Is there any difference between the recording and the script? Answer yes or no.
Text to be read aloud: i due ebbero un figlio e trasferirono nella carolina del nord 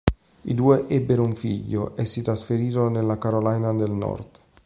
yes